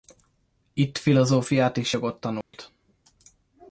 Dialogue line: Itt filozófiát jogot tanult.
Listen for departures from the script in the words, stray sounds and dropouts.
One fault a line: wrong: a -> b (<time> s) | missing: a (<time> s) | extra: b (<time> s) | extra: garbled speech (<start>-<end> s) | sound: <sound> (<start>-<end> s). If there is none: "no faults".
extra: és (1.8 s)
sound: dropout (2.4-2.5 s)